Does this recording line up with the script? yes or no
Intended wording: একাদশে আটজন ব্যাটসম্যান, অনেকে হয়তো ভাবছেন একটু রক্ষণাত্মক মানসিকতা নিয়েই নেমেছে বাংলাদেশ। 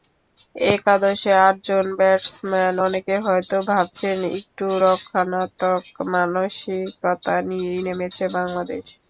yes